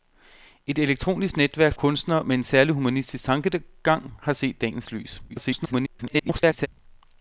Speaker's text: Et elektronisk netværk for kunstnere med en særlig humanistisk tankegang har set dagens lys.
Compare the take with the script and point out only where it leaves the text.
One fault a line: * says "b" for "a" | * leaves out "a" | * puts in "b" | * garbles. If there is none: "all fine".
* leaves out "for"
* garbles